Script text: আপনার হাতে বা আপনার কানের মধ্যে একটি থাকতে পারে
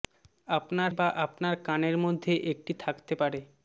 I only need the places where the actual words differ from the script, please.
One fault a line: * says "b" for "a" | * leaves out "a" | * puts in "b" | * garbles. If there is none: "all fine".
* leaves out "হাতে"